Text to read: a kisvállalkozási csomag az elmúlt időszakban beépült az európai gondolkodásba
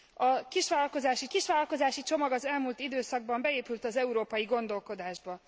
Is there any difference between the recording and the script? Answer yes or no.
yes